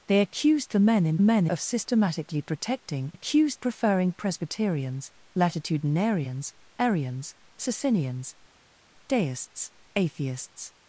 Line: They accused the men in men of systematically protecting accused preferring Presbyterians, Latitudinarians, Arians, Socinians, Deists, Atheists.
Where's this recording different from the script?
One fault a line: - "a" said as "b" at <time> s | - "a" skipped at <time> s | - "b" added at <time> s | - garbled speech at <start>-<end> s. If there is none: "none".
none